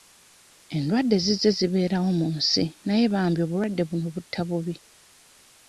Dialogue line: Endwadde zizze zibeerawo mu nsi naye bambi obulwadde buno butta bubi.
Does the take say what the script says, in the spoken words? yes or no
yes